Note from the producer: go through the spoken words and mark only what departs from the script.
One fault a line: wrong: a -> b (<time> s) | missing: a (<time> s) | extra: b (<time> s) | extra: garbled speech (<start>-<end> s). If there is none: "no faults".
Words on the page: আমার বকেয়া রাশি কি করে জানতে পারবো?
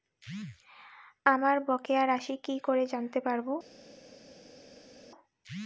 no faults